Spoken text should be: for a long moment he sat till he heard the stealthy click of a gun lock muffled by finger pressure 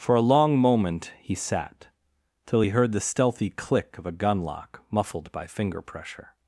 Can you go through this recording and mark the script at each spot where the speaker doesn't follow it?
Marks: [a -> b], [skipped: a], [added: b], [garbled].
for a long moment he sat till he heard the stealthy click of a gun lock muffled by finger pressure